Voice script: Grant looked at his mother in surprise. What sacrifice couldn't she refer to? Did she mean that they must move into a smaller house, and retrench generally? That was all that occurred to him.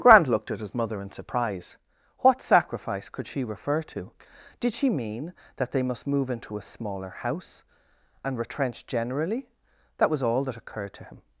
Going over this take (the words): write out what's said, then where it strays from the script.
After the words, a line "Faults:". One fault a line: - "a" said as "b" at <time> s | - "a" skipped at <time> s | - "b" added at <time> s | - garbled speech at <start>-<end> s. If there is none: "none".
Grant looked at his mother in surprise. What sacrifice could she refer to? Did she mean that they must move into a smaller house, and retrench generally? That was all that occurred to him.
Faults:
- "couldn't" said as "could" at 3.1 s